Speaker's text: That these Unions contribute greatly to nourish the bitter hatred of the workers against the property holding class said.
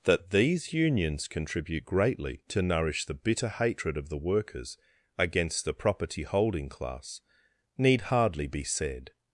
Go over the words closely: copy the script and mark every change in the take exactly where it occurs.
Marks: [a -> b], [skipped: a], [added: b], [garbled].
That these Unions contribute greatly to nourish the bitter hatred of the workers against the property holding class [added: need hardly be] said.